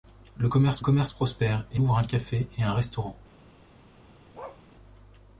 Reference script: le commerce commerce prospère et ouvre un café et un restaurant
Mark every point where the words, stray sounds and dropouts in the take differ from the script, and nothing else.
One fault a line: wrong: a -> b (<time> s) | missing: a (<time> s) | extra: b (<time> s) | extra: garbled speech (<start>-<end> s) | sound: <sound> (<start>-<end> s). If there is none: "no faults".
sound: bark (4.3-4.6 s)